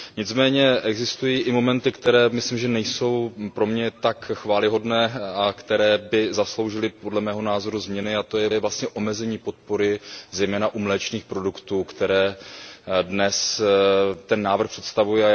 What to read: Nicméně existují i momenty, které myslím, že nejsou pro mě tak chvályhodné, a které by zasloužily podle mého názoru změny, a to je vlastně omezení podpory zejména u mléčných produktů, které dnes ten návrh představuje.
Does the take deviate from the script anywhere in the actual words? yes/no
yes